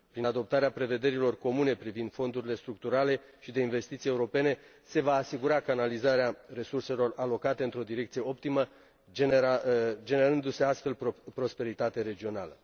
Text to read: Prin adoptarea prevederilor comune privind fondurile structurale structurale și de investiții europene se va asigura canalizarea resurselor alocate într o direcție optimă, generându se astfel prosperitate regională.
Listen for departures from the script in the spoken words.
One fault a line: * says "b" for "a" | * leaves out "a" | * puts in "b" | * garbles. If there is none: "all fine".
* leaves out "structurale"